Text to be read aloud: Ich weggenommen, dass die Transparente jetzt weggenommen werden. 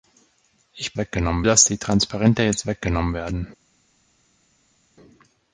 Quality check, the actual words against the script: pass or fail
pass